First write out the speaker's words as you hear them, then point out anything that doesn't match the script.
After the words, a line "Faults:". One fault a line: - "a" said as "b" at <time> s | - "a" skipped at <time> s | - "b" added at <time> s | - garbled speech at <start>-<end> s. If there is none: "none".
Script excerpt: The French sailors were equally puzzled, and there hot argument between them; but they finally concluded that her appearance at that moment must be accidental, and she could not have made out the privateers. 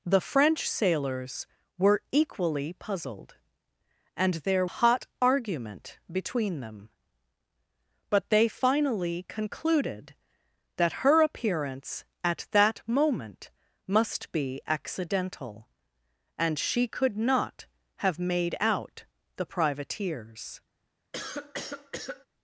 The French sailors were equally puzzled, and there hot argument between them; but they finally concluded that her appearance at that moment must be accidental, and she could not have made out the privateers.
Faults:
none